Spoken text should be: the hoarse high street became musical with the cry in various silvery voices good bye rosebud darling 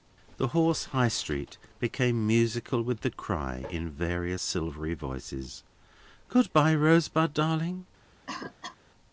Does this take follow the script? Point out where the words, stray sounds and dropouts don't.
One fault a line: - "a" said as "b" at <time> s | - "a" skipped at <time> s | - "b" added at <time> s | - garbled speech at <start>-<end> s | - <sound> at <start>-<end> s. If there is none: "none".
- cough at 8.3-8.8 s